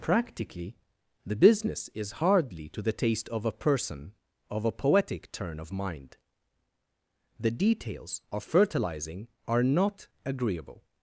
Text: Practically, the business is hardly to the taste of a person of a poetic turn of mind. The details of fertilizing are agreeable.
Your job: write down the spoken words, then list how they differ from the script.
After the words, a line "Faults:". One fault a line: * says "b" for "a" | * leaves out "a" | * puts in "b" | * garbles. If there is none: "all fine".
Practically, the business is hardly to the taste of a person of a poetic turn of mind. The details of fertilizing are not agreeable.
Faults:
* puts in "not"